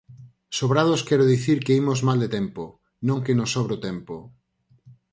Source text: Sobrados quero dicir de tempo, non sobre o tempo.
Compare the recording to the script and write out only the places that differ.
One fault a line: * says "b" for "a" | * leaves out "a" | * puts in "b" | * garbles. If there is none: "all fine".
* puts in "que imos mal"
* puts in "que nos"